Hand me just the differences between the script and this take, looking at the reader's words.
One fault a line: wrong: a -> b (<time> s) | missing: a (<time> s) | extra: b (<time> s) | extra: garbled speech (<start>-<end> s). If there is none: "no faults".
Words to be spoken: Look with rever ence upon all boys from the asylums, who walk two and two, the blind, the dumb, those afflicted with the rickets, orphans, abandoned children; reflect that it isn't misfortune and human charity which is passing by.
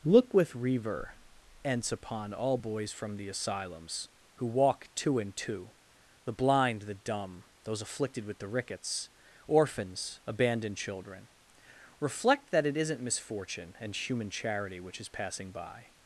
no faults